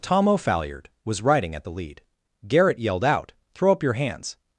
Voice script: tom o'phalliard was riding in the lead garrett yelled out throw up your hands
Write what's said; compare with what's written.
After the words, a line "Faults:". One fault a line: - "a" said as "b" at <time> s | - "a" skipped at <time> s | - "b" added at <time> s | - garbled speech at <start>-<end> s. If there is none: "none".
tom o'phalliard was riding at the lead garrett yelled out throw up your hands
Faults:
- "in" said as "at" at 1.6 s